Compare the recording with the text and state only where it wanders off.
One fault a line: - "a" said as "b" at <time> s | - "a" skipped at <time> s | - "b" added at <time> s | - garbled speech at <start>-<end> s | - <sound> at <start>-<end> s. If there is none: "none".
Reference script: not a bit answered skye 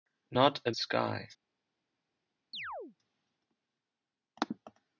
- "bit answered" skipped at 0.7 s
- chirp at 2.5-3.0 s